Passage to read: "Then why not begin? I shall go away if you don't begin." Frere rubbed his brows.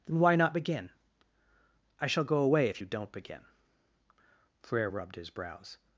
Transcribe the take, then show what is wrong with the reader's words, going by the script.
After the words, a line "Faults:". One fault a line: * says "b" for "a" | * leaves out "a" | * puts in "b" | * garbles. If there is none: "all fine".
"Then why not begin? I shall go away if you don't begin." Frere rubbed his brows.
Faults:
all fine